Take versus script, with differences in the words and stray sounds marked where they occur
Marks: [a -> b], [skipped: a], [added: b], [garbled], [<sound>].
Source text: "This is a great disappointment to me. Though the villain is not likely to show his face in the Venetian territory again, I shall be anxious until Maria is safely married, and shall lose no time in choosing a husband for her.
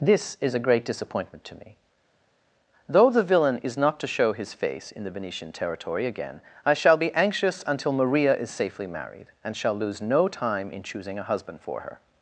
"This is a great disappointment to me. Though the villain is not [skipped: likely] to show his face in the Venetian territory again, I shall be anxious until Maria is safely married, and shall lose no time in choosing a husband for her.